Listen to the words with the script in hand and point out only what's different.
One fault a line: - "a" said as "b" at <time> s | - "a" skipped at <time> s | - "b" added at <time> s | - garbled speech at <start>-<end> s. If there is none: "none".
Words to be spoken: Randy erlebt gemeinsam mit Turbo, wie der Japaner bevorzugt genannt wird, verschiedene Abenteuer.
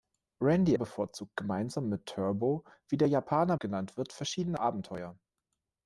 - "erlebt" said as "bevorzugt" at 0.7 s
- "bevorzugt" skipped at 3.6 s